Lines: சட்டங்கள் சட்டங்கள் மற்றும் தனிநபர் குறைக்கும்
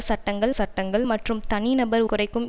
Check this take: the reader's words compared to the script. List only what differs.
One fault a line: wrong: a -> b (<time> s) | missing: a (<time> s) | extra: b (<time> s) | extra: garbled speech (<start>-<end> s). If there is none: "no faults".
no faults